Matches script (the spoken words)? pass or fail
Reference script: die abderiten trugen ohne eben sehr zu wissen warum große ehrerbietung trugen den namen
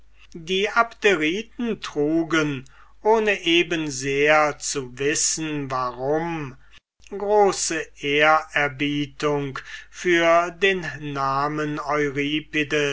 fail